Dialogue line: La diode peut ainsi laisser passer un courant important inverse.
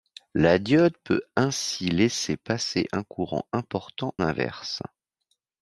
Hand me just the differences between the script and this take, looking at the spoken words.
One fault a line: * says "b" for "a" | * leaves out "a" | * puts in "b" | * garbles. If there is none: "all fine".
all fine